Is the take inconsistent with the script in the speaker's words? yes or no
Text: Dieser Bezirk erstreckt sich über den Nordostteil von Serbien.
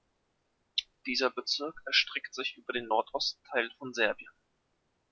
no